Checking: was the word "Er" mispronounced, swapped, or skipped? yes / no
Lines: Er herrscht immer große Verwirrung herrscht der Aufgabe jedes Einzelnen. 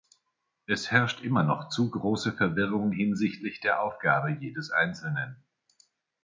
yes